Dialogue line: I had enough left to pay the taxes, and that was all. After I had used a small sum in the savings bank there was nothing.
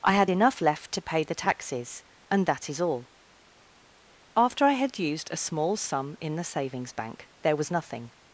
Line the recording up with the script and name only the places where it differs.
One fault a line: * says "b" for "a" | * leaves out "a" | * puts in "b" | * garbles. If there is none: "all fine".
* says "is" for "was"